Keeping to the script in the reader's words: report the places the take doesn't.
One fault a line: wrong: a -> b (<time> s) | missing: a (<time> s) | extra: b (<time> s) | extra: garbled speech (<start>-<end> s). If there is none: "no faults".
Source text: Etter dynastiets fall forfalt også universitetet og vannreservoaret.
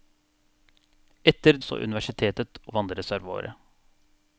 missing: dynastiets fall forfalt (1.6 s)
missing: og (2.6 s)